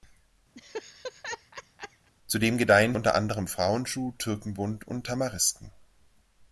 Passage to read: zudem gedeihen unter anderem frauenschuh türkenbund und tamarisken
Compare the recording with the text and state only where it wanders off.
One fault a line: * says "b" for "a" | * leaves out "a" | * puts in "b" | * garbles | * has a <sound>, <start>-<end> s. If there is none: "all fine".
* has a laugh, 0.6-2.1 s